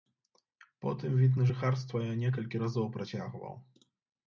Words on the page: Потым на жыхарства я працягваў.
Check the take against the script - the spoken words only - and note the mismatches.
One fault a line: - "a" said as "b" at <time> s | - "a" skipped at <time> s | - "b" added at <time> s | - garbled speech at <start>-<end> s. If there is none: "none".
- "від" added at 1.2 s
- "некалькі разоў" added at 2.2 s